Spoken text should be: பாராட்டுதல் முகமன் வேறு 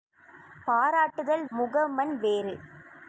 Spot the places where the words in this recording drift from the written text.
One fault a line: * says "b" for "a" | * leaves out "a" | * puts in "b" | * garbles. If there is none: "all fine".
all fine